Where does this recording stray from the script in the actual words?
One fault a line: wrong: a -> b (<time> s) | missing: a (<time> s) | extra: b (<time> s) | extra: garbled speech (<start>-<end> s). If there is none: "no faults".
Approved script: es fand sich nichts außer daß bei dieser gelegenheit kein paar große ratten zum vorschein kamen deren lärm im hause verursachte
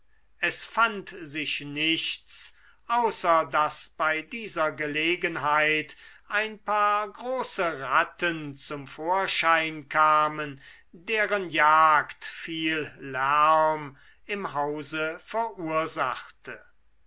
wrong: kein -> ein (6.3 s)
extra: jagd viel (11.5 s)